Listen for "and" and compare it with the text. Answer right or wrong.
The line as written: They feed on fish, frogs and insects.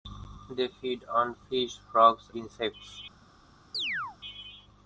wrong